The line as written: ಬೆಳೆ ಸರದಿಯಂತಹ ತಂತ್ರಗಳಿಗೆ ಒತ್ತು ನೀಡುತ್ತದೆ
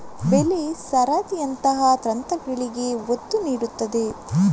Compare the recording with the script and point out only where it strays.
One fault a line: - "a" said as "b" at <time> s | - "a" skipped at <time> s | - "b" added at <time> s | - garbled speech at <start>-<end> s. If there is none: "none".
none